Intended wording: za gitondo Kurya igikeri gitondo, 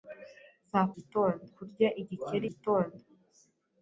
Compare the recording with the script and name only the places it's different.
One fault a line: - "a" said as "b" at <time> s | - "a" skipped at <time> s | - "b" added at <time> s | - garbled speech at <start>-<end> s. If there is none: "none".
none